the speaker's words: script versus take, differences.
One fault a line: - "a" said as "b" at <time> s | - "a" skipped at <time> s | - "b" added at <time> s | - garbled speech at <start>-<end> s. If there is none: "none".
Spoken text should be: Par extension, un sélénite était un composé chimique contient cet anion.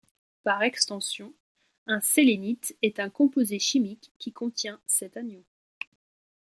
- "était" said as "est" at 2.8 s
- "qui" added at 4.2 s